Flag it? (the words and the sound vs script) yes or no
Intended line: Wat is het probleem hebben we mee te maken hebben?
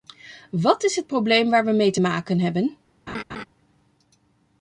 yes